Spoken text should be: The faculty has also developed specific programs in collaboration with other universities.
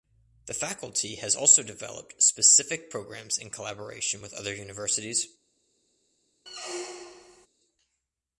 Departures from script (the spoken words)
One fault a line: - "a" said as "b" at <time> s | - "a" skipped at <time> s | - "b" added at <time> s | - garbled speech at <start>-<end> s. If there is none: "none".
none